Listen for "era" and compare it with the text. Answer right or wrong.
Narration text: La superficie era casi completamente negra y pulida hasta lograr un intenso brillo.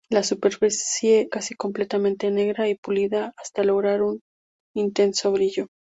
wrong